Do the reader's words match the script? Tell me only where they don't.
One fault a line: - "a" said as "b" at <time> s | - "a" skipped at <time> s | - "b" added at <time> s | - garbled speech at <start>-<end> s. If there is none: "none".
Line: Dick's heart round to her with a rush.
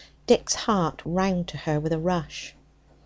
none